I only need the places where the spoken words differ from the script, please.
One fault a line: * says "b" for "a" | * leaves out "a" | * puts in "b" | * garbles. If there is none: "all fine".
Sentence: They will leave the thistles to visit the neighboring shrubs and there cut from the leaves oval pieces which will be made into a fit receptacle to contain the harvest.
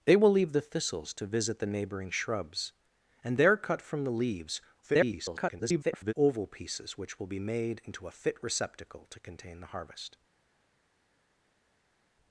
* garbles